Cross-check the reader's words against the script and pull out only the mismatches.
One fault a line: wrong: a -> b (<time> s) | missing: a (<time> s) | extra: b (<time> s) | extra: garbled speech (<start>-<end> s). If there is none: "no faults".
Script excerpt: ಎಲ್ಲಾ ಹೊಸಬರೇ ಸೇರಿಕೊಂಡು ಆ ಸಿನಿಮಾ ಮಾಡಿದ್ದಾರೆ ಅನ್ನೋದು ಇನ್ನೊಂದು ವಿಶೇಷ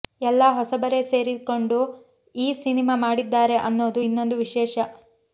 wrong: ಆ -> ಈ (2.4 s)